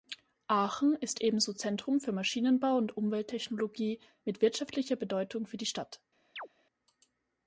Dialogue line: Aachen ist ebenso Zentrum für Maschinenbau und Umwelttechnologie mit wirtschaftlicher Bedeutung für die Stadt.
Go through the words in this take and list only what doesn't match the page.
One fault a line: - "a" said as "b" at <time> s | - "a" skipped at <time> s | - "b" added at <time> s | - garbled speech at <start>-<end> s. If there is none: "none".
none